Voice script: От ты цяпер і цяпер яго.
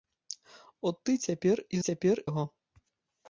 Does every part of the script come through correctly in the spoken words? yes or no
yes